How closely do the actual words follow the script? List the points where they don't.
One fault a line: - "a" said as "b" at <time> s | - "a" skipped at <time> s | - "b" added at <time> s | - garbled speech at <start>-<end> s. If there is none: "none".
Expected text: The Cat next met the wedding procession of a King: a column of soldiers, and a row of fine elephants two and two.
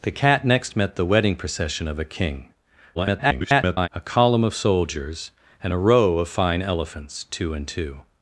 - garbled speech at 2.9-3.9 s